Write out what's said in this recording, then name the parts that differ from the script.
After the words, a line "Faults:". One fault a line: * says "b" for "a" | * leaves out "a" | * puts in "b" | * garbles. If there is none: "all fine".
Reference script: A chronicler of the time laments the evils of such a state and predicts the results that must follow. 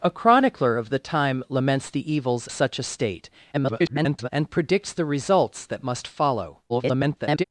A chronicler of the time laments the evils such a state [garbled] and predicts the results that must follow. [garbled]
Faults:
* leaves out "of"
* garbles
* garbles